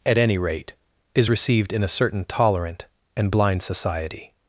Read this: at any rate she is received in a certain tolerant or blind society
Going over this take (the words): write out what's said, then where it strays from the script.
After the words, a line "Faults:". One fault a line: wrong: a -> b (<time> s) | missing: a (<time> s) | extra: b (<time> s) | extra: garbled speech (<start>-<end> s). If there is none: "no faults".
at any rate is received in a certain tolerant and blind society
Faults:
missing: she (0.7 s)
wrong: or -> and (3.2 s)